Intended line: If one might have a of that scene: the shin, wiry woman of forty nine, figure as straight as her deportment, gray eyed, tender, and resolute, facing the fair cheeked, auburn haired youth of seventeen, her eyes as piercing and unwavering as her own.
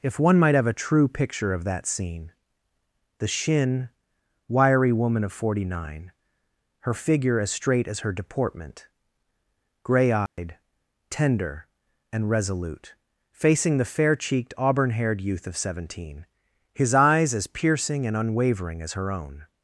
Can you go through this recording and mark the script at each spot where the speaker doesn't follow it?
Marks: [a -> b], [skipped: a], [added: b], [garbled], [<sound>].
If one might have a [added: true picture] of that scene: the shin, wiry woman of forty nine, [added: her] figure as straight as her deportment, gray eyed, [dropout] tender, and resolute, facing the fair cheeked, auburn haired youth of seventeen, [her -> his] eyes as piercing and unwavering as her own.